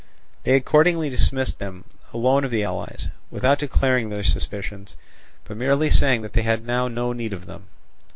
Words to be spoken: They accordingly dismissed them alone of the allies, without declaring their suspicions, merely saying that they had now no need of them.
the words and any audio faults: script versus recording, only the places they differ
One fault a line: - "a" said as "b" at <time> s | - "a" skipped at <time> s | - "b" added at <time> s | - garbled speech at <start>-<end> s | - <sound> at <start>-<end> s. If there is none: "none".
- "but" added at 5.4 s